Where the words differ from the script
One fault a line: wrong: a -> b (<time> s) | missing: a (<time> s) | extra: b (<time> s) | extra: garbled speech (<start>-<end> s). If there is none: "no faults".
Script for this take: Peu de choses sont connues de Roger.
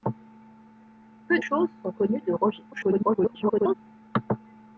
missing: de (1.4 s)
extra: garbled speech (2.7-3.7 s)